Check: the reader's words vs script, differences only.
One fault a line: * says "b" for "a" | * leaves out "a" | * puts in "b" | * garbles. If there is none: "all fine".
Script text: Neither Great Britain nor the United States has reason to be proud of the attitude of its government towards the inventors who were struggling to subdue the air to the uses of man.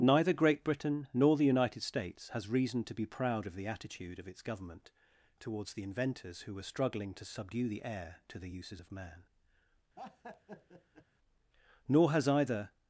* puts in "Nor has either"